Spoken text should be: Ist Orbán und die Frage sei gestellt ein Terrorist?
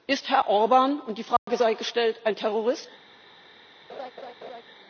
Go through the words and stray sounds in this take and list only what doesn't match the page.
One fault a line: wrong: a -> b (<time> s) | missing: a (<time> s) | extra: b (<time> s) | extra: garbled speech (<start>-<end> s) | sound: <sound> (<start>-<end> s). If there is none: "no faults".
extra: Herr (0.3 s)
sound: dropout (1.4-1.5 s)
sound: laugh (3.9-4.6 s)